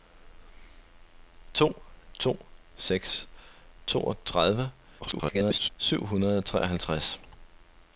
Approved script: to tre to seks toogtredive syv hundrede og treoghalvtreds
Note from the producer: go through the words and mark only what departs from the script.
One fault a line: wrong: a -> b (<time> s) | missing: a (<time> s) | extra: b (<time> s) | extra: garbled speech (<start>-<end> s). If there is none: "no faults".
missing: tre (1.8 s)
extra: garbled speech (5.0-5.7 s)